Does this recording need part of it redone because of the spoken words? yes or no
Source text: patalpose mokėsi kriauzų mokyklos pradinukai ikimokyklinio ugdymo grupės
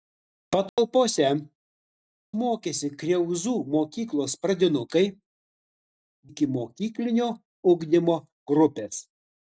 no